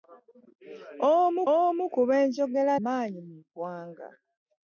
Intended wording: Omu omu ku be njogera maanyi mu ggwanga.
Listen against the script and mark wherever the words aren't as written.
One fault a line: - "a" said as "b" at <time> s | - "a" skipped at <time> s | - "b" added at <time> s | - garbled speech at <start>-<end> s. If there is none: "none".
none